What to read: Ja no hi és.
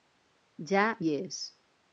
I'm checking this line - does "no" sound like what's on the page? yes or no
no